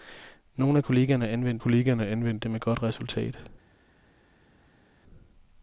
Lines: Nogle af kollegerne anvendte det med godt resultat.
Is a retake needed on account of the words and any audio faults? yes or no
yes